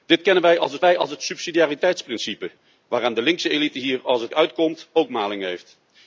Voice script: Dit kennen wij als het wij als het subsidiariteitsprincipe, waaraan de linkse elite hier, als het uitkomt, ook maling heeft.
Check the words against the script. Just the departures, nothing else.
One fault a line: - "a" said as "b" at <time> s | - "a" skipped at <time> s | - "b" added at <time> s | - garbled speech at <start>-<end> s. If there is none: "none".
none